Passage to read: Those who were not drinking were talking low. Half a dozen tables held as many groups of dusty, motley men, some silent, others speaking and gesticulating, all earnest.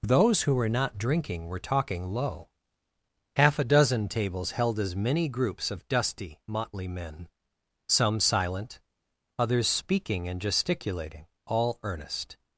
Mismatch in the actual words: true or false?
false